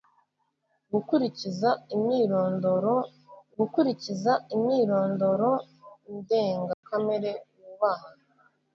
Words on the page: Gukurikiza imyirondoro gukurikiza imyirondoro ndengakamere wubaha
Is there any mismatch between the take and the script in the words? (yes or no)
no